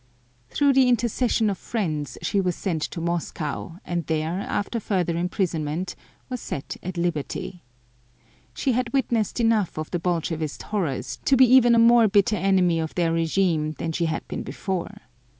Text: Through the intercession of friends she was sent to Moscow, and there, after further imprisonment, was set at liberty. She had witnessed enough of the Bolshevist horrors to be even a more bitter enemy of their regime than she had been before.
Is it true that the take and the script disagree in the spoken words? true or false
false